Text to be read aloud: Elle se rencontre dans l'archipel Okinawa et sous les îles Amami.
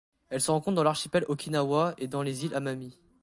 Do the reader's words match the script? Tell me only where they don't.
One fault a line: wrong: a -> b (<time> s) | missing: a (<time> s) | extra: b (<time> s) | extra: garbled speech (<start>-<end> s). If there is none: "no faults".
wrong: sous -> dans (2.1 s)